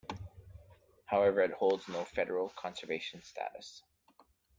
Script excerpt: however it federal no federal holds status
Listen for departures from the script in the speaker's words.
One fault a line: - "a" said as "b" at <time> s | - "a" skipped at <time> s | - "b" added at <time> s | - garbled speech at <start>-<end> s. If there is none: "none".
- "federal" said as "holds" at 1.5 s
- "holds" said as "conservation" at 2.5 s